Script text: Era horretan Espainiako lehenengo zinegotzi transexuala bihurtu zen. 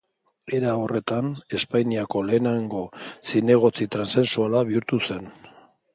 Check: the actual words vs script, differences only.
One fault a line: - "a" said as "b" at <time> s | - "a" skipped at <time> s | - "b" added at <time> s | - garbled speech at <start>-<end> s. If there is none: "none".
none